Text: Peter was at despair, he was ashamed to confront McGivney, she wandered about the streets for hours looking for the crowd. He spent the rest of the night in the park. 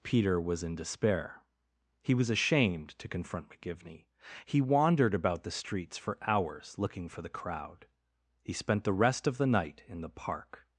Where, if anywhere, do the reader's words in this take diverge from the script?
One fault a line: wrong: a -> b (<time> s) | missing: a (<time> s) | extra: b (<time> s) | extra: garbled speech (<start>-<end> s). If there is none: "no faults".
wrong: at -> in (0.6 s)
wrong: she -> he (4.5 s)